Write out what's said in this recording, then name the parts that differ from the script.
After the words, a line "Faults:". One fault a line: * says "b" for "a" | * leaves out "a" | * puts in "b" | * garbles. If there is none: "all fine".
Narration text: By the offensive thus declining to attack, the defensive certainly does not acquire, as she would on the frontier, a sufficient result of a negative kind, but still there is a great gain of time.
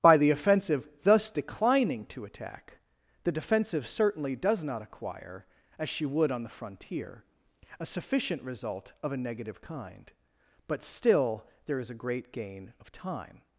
By the offensive thus declining to attack, the defensive certainly does not acquire, as she would on the frontier, a sufficient result of a negative kind, but still there is a great gain of time.
Faults:
all fine